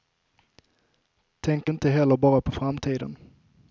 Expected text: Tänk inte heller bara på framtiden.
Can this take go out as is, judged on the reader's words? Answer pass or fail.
pass